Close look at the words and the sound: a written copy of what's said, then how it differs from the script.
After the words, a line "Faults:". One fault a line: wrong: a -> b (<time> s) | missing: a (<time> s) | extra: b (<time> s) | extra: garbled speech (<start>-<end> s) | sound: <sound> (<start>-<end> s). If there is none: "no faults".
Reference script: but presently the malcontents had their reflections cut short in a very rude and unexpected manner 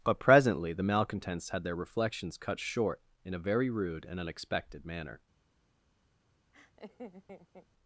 but presently the malcontents had their reflections cut short in a very rude and unexpected manner
Faults:
sound: laugh (6.5-7.7 s)